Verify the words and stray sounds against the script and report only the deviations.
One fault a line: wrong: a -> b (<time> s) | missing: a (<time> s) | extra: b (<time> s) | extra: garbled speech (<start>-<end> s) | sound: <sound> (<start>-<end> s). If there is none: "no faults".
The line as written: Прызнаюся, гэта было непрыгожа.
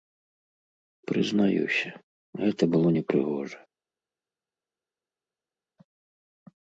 no faults